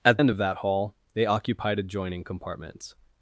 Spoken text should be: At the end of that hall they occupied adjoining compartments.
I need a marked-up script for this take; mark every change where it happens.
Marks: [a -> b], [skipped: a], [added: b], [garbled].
At [skipped: the] end of that hall they occupied adjoining compartments.